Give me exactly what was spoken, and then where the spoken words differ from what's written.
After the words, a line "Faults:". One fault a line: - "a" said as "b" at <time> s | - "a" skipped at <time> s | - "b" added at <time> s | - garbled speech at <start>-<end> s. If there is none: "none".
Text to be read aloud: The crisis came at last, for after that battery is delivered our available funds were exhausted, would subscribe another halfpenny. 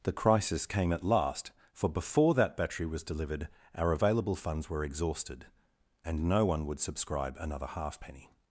The crisis came at last, for before that battery was delivered our available funds were exhausted, and no one would subscribe another halfpenny.
Faults:
- "after" said as "before" at 1.9 s
- "is" said as "was" at 2.9 s
- "and no one" added at 6.0 s